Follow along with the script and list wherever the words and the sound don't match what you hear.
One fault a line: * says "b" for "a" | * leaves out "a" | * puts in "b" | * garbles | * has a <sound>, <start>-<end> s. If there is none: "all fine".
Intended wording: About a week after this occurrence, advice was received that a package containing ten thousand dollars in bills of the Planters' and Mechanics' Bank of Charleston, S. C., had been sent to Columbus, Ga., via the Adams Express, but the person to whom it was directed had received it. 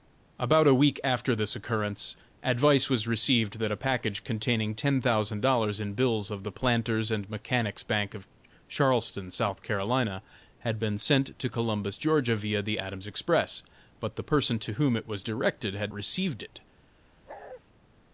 * has a bark, 17.3-17.6 s